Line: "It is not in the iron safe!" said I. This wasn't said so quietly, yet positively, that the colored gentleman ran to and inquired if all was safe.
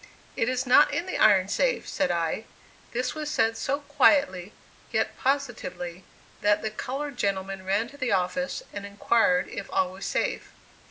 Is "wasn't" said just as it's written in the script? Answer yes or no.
no